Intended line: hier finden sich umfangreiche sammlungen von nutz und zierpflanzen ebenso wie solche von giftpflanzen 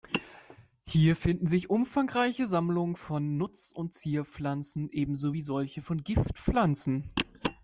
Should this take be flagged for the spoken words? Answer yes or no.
no